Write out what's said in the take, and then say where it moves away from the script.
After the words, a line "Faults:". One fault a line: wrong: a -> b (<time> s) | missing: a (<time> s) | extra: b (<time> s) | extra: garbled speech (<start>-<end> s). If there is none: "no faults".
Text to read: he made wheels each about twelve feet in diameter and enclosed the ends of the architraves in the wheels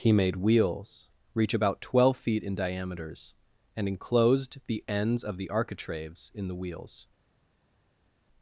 he made wheels reach about twelve feet in diameters and enclosed the ends of the architraves in the wheels
Faults:
wrong: each -> reach (1.4 s)
wrong: diameter -> diameters (2.5 s)